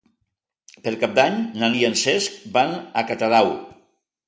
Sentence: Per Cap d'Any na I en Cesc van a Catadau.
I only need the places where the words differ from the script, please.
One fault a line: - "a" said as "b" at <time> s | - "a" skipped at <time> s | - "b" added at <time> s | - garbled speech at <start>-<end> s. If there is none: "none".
none